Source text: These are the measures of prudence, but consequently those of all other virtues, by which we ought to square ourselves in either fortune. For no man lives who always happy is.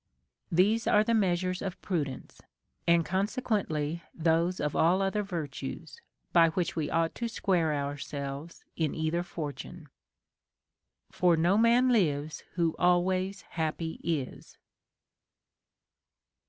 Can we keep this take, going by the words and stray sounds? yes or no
no